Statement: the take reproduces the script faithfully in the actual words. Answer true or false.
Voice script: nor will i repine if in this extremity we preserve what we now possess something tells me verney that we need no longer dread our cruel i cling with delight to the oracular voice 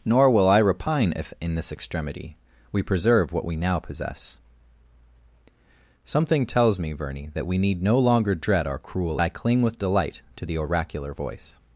true